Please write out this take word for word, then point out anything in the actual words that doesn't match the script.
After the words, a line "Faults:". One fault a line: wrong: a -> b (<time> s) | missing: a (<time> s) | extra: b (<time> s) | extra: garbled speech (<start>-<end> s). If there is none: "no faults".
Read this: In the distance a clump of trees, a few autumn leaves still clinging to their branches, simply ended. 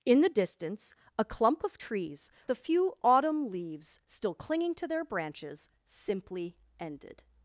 In the distance a clump of trees, a few autumn leaves still clinging to their branches, simply ended.
Faults:
no faults